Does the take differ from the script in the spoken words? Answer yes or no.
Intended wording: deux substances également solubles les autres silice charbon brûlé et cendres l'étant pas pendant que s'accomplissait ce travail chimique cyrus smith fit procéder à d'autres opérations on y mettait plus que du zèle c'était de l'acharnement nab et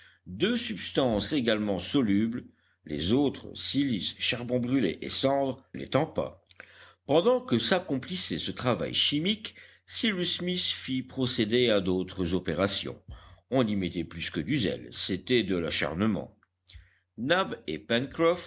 no